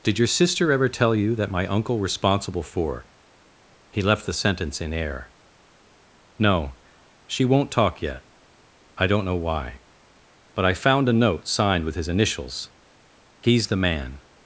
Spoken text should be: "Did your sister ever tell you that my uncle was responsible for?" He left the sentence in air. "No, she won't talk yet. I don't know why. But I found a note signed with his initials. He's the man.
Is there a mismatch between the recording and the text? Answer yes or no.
yes